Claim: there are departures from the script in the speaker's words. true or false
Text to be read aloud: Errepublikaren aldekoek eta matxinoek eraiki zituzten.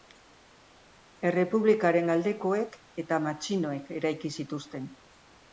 false